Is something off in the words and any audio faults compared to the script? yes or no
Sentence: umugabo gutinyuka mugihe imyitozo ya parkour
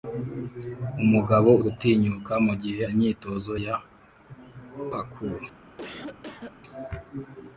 yes